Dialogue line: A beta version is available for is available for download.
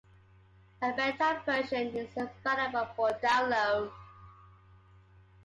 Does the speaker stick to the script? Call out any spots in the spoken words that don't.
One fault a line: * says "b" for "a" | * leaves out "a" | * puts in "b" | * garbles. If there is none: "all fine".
* leaves out "is available for"